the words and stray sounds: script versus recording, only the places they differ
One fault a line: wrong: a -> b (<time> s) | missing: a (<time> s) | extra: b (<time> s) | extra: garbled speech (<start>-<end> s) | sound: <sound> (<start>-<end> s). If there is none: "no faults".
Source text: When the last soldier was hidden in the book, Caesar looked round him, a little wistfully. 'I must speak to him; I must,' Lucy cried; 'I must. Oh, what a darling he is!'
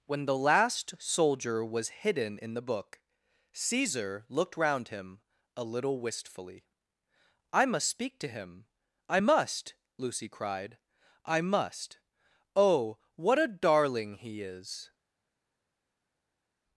no faults